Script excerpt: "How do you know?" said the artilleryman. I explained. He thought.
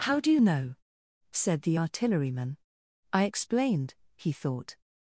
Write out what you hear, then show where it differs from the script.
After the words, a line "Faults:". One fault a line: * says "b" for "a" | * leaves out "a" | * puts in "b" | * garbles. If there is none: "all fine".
"How do you know?" said the artilleryman. I explained. He thought.
Faults:
all fine